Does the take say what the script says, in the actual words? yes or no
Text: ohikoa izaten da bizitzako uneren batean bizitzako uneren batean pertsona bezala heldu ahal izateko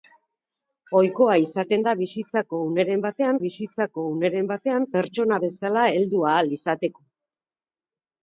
yes